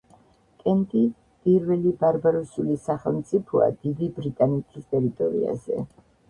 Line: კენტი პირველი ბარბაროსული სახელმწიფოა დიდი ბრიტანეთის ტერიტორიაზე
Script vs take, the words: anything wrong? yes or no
no